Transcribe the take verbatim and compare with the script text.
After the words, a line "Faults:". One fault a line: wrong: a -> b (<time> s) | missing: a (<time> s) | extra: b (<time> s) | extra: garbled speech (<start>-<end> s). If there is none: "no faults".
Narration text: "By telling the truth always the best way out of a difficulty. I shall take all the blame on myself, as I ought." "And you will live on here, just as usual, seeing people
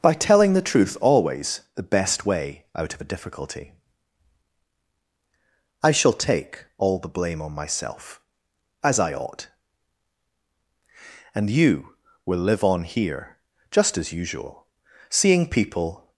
"By telling the truth always the best way out of a difficulty. I shall take all the blame on myself, as I ought." "And you will live on here, just as usual, seeing people
Faults:
no faults